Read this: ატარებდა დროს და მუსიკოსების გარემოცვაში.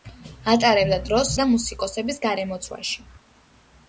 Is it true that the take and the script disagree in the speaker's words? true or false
false